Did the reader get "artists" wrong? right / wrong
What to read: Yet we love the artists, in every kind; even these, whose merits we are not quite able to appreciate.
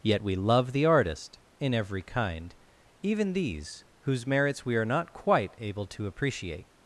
wrong